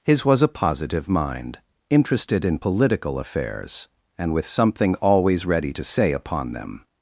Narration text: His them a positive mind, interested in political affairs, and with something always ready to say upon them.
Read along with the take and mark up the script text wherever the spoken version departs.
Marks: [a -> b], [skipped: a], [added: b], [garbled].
His [them -> was] a positive mind, interested in political affairs, and with something always ready to say upon them.